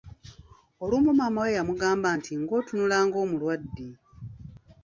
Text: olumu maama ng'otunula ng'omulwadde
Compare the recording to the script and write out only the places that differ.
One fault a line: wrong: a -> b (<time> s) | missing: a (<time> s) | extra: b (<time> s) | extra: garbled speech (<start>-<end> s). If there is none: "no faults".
extra: we yamugamba nti (1.4 s)